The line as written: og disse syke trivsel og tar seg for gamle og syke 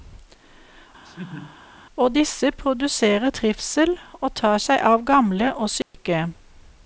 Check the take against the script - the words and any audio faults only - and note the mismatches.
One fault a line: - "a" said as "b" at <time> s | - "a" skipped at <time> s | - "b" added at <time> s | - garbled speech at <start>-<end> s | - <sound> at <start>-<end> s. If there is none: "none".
- laugh at 1.0-1.6 s
- "syke" said as "produserer" at 2.5 s
- "for" said as "av" at 4.9 s
- dropout at 5.8-5.9 s